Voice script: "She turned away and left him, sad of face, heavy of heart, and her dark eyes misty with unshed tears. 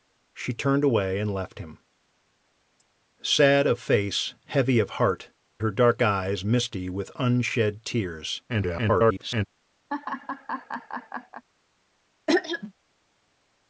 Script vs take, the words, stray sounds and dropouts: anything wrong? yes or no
yes